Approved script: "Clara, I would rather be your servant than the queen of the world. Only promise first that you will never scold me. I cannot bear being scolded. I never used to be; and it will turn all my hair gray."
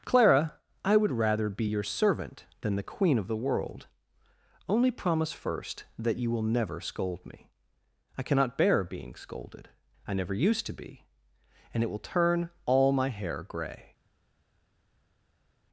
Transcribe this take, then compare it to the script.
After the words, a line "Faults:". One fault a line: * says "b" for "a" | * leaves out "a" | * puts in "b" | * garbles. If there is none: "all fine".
"Clara, I would rather be your servant than the queen of the world. Only promise first that you will never scold me. I cannot bear being scolded. I never used to be; and it will turn all my hair gray."
Faults:
all fine